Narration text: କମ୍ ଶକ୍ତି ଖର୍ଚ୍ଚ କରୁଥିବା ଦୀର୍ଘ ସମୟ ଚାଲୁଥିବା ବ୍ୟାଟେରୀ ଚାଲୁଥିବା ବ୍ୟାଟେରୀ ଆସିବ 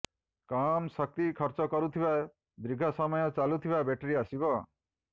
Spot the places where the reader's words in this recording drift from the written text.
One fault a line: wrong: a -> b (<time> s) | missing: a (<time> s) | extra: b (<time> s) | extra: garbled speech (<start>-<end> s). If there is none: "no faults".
missing: ଚାଲୁଥିବା ବ୍ୟାଟେରୀ (4.2 s)